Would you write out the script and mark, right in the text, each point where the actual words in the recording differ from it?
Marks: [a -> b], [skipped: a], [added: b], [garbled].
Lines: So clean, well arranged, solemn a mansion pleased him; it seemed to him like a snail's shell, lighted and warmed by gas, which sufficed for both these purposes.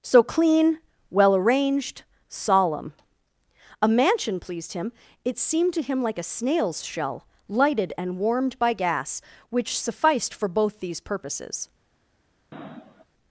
So clean, well arranged, solemn a mansion pleased him; it seemed to him like a snail's shell, lighted and warmed by gas, which sufficed for both these purposes.